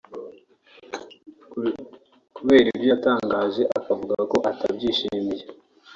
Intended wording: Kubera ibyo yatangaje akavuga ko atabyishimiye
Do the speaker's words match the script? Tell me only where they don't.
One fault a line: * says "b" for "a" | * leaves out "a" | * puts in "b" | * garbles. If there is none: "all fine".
all fine